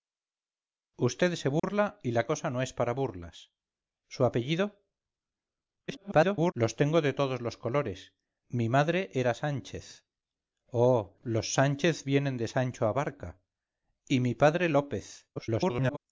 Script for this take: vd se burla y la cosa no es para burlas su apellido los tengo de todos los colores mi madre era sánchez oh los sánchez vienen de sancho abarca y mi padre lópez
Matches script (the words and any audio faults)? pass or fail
fail